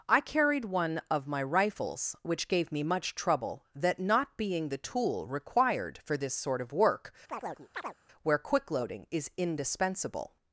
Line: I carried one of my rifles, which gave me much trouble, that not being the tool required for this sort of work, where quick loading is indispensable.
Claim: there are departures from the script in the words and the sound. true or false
true